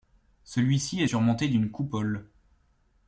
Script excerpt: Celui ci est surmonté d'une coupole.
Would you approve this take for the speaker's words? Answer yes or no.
yes